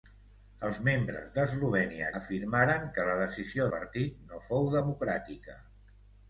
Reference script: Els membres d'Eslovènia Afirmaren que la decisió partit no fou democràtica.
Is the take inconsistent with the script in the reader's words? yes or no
no